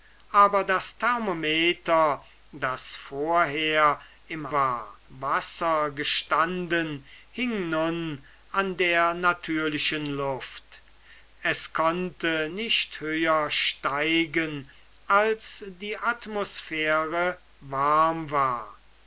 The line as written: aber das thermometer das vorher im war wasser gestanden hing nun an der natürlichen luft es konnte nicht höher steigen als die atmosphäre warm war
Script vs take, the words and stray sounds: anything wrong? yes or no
no